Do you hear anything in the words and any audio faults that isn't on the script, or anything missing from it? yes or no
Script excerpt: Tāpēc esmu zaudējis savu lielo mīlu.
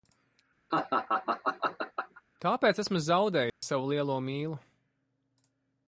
yes